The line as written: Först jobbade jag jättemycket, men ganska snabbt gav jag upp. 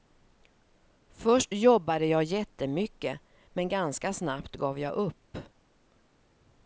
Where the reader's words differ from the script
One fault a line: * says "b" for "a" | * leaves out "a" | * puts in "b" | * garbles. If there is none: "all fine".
all fine